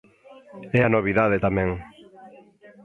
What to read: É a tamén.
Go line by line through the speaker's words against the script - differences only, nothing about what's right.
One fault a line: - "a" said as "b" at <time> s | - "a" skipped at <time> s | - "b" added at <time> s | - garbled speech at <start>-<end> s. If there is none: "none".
- "novidade" added at 1.0 s